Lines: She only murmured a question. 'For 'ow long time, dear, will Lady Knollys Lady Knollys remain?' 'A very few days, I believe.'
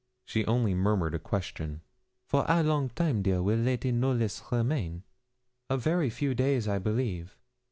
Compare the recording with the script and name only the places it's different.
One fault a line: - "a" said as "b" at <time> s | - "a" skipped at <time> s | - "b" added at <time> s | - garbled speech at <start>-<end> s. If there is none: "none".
- "Lady Knollys" skipped at 4.4 s